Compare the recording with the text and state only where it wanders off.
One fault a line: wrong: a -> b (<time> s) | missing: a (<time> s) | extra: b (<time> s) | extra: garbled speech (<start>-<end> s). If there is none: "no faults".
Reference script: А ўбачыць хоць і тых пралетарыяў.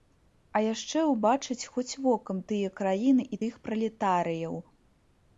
extra: яшчэ (0.7 s)
extra: вокам тыя краіны (2.1 s)